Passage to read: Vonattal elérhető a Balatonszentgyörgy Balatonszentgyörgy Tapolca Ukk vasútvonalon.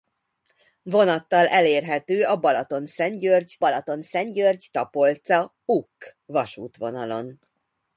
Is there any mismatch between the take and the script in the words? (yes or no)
no